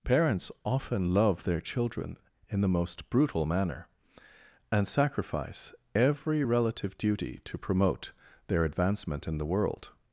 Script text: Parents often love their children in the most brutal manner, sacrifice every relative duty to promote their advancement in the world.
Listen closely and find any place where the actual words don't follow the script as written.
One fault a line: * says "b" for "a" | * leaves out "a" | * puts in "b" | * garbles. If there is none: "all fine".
* puts in "and"